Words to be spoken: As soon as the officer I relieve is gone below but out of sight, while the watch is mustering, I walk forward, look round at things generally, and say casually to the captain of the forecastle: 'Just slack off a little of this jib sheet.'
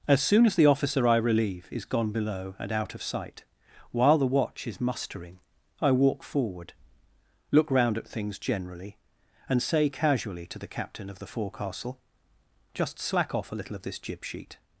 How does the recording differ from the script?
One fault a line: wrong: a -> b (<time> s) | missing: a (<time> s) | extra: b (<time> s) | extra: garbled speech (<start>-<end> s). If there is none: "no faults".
wrong: but -> and (2.6 s)